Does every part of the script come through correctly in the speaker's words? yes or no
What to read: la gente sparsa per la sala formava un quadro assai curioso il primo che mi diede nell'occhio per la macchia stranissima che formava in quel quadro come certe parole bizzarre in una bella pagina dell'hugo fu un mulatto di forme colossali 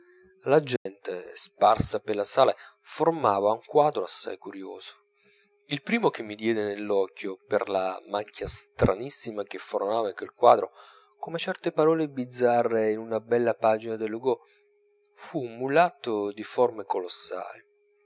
yes